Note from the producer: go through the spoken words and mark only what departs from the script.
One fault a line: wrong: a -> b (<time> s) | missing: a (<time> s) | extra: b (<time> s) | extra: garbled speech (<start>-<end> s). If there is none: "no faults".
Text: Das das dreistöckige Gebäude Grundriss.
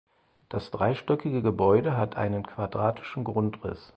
missing: das (0.7 s)
extra: hat einen quadratischen (2.0 s)